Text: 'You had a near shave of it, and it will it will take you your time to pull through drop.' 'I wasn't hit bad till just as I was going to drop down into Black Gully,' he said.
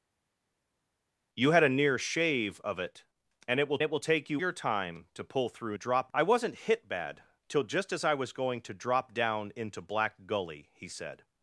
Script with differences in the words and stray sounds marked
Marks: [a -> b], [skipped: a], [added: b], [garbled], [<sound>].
'You had a near shave of it, and it will it will take you your time to pull through drop.' 'I wasn't hit bad till just as I was going to drop down into Black Gully,' he said.